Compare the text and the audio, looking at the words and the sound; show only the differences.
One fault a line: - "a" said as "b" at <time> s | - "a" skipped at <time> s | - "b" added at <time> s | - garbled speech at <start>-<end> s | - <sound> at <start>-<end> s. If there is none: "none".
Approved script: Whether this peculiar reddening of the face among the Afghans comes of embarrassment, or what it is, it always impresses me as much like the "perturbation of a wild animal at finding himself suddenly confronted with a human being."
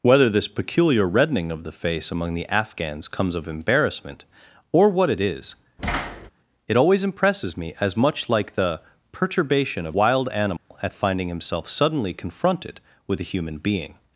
- thud at 5.8-6.3 s
- "a" skipped at 9.9 s
- dropout at 10.6-10.7 s